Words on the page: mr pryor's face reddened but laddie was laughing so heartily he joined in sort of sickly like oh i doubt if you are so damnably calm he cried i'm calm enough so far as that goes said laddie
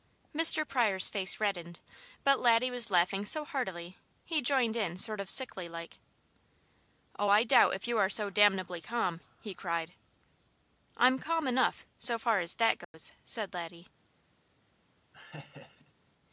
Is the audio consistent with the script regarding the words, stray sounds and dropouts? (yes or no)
no